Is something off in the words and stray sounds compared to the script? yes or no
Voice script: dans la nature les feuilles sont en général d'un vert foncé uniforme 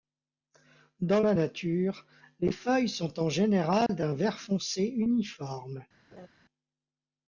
yes